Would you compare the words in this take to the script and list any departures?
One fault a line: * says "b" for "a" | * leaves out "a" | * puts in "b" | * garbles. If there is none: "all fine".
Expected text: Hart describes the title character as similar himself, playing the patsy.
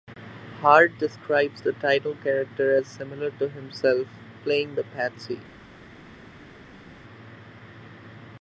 * puts in "to"